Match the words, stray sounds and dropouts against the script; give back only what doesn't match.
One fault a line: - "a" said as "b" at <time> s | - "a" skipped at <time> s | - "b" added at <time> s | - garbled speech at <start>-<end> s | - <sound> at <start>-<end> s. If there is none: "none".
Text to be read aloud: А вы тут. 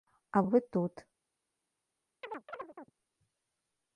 - chirp at 2.2-2.9 s